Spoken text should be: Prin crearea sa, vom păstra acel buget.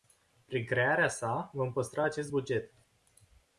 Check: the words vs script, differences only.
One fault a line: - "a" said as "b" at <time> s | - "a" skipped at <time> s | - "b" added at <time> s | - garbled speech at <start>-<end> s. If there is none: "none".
- "acel" said as "acest" at 2.0 s